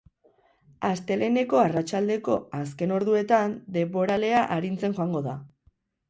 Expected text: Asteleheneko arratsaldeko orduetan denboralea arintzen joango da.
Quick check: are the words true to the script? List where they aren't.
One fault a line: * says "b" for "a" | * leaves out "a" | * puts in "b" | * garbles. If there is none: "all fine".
* puts in "azken"